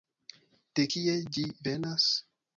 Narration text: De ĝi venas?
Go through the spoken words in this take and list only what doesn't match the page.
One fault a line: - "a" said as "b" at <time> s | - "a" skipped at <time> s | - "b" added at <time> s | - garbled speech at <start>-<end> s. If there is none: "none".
- "kie" added at 0.9 s